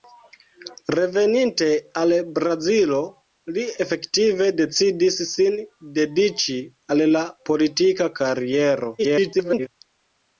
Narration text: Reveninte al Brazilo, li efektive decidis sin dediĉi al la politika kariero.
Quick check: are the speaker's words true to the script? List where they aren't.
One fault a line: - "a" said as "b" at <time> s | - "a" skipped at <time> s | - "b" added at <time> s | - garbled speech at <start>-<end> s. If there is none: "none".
- garbled speech at 9.0-9.7 s